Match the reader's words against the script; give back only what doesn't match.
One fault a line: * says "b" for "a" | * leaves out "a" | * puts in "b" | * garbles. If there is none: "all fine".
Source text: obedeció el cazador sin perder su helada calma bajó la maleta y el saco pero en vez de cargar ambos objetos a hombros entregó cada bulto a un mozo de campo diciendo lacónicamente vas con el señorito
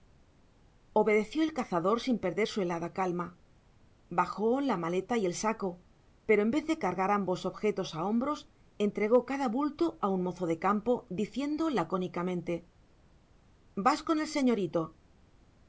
all fine